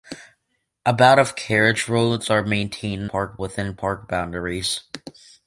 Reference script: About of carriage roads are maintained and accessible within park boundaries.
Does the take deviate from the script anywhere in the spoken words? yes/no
yes